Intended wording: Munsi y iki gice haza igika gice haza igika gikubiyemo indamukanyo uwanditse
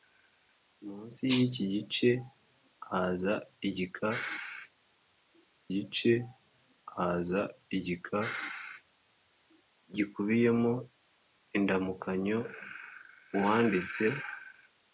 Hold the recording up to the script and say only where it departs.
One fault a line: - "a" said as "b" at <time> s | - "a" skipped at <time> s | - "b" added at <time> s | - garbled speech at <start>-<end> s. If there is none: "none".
none